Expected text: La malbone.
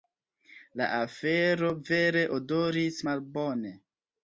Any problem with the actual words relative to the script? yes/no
yes